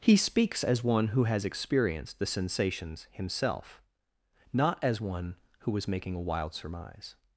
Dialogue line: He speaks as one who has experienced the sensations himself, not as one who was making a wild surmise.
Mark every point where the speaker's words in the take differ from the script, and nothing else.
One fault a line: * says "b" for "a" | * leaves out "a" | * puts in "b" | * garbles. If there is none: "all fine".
all fine